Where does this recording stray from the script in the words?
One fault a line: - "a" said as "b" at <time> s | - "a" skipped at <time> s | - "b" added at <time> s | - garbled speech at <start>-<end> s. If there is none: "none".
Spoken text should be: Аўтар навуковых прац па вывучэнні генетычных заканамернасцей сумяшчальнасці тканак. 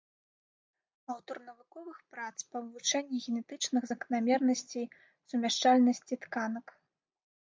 none